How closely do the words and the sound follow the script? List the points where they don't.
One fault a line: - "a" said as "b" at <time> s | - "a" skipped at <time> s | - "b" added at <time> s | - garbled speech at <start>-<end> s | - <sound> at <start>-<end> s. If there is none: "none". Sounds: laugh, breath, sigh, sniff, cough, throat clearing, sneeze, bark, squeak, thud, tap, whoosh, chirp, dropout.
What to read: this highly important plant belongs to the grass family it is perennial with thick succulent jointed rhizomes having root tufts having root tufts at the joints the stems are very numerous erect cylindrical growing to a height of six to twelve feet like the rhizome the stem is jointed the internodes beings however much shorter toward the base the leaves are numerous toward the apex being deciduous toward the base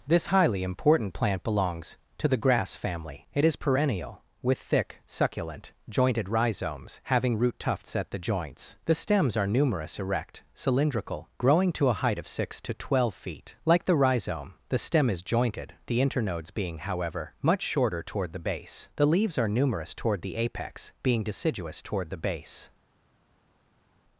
- "having root tufts" skipped at 7.9 s
- "very" skipped at 9.5 s
- "beings" said as "being" at 16.5 s